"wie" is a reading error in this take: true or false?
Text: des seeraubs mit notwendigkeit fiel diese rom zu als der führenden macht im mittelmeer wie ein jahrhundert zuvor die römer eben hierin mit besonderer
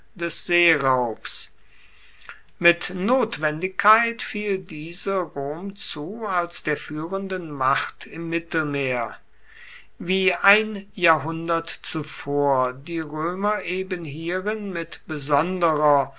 false